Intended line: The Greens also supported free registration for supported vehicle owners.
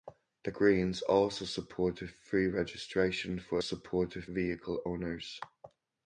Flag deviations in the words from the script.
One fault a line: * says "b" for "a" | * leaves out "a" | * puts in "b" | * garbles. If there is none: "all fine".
all fine